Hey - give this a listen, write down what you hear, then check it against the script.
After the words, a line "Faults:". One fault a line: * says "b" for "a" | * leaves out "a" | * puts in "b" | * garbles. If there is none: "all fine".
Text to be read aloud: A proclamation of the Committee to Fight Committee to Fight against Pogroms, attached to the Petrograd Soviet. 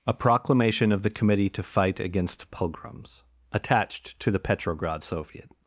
A proclamation of the Committee to Fight against Pogroms, attached to the Petrograd Soviet.
Faults:
* leaves out "Committee to Fight"